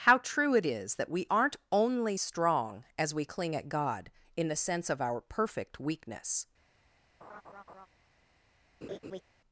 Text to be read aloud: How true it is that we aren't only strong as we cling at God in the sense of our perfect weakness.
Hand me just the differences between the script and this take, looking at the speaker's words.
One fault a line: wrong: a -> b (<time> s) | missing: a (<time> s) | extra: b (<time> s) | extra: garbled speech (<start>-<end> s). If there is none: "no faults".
no faults